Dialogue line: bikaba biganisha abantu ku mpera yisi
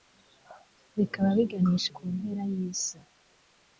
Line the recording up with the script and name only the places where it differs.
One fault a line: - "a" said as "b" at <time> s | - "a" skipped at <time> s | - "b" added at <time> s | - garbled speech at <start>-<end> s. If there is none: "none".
- "abantu" skipped at 1.9 s